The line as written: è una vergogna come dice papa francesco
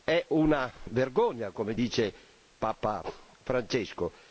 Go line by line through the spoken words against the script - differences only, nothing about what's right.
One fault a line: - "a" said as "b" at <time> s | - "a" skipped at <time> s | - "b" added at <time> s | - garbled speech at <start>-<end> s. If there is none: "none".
none